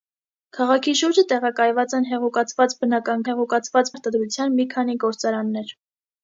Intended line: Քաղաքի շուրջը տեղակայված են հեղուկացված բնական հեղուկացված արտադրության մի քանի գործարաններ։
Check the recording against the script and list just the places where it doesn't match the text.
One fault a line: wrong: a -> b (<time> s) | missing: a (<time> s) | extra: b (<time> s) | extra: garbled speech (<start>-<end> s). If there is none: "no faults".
no faults